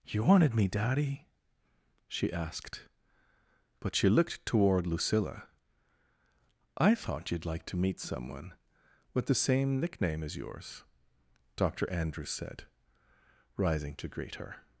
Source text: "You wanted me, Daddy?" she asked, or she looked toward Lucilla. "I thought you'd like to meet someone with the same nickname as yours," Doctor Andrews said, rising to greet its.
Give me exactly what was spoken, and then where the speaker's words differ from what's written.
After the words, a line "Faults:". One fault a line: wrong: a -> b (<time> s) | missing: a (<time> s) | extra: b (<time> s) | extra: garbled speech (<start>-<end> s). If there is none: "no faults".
"You wanted me, Daddy?" she asked, but she looked toward Lucilla. "I thought you'd like to meet someone with the same nickname as yours," Doctor Andrews said, rising to greet her.
Faults:
wrong: or -> but (3.8 s)
wrong: its -> her (14.3 s)